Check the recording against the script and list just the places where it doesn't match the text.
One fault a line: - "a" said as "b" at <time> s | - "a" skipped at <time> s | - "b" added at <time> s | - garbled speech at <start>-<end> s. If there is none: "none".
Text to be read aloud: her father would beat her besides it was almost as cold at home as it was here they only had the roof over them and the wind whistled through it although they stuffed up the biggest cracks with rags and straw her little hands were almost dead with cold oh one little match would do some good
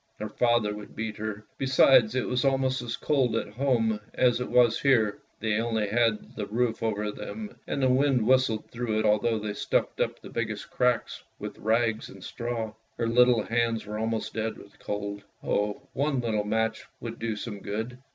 none